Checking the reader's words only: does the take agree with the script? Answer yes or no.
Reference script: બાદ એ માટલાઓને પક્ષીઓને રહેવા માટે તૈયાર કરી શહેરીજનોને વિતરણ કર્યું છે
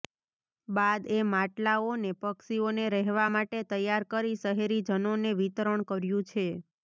yes